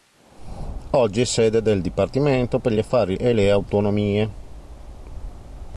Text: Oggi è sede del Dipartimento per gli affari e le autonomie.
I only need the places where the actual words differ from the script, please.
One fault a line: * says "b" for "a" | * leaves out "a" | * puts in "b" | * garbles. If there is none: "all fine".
all fine